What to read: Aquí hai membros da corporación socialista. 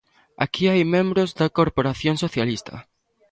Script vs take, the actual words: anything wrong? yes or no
no